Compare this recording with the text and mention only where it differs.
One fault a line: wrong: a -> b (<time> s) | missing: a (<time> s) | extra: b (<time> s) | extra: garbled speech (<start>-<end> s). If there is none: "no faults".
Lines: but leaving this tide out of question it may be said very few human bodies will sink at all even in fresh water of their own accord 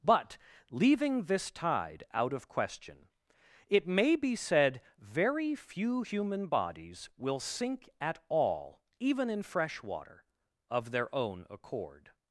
no faults